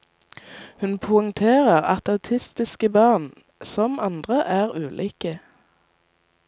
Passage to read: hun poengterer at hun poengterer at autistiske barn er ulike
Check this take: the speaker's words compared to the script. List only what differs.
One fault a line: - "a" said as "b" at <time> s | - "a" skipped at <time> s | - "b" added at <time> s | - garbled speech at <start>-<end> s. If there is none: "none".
- "hun poengterer at autistiske barn" said as "autistiske barn som andre" at 2.1 s